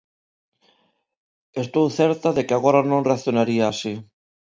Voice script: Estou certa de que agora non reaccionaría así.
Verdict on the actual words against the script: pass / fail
pass